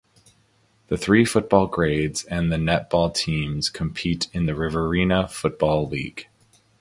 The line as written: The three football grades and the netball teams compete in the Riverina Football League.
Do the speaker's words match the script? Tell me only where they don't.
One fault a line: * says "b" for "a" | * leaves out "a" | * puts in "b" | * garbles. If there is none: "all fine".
all fine